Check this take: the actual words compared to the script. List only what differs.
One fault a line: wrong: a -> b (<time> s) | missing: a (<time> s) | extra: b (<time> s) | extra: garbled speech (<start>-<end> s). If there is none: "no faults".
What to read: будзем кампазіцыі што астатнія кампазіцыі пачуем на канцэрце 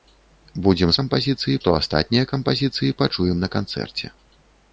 no faults